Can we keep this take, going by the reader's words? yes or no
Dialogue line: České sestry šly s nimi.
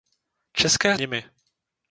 no